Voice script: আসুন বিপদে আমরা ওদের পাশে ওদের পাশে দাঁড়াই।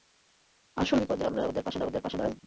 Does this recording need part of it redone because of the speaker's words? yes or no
no